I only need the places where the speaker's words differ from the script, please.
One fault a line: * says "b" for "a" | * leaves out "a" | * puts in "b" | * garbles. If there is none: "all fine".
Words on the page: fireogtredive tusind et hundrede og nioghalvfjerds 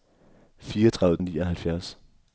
* leaves out "tusind et hundrede"